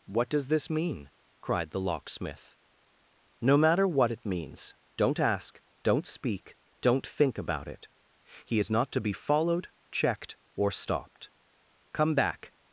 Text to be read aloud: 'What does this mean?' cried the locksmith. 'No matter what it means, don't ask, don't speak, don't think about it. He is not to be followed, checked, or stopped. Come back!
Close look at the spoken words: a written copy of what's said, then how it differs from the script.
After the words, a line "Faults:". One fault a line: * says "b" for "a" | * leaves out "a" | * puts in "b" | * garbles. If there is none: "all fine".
'What does this mean?' cried the locksmith. 'No matter what it means, don't ask, don't speak, don't think about it. He is not to be followed, checked, or stopped. Come back!
Faults:
all fine